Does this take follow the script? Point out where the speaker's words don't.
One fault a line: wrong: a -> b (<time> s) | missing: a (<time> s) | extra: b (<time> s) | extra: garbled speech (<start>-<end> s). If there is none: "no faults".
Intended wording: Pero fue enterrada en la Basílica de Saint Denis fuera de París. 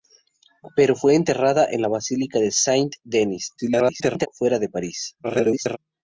extra: garbled speech (3.6-4.3 s)
extra: garbled speech (5.2-5.8 s)